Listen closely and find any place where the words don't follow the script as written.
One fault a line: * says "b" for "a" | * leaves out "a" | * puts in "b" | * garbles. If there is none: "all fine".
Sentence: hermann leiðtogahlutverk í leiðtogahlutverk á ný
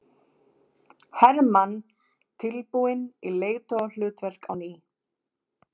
* says "tilbúinn" for "leiðtogahlutverk"